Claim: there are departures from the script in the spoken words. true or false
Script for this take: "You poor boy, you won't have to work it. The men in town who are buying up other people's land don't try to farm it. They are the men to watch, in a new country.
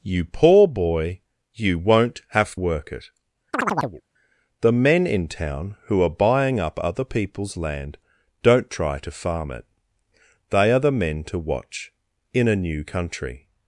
true